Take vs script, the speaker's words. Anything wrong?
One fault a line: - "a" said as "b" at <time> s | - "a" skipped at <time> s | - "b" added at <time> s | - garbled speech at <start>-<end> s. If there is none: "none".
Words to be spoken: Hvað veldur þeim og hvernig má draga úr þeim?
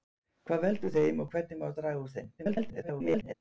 - garbled speech at 2.4-3.3 s